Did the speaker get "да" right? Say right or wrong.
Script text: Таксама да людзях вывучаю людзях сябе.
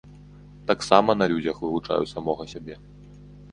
wrong